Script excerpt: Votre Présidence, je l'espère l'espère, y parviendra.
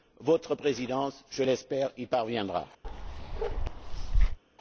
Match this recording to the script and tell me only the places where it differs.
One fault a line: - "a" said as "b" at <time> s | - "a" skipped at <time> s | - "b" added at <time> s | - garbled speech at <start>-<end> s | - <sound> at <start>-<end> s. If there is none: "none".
- "l'espère" skipped at 1.9 s
- bark at 2.8-4.4 s